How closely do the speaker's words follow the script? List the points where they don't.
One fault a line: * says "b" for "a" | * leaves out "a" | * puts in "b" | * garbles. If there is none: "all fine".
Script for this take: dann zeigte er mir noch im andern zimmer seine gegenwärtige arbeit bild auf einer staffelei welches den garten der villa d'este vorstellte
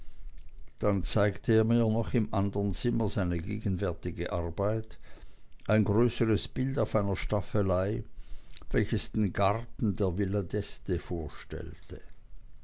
* puts in "ein größeres"